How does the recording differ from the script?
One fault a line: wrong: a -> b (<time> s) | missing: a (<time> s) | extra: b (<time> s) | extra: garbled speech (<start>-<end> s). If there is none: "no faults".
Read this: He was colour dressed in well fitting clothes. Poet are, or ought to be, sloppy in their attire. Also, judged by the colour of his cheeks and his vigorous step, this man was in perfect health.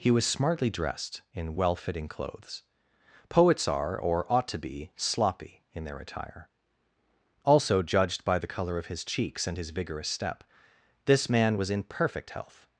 wrong: colour -> smartly (0.2 s)
wrong: Poet -> Poets (3.3 s)